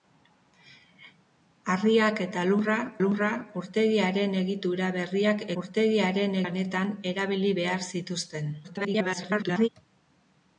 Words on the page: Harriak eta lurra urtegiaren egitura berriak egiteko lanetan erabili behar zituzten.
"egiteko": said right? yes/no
no